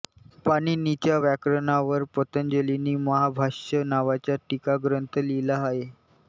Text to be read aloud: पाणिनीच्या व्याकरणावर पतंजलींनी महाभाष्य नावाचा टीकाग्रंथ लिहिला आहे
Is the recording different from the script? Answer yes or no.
no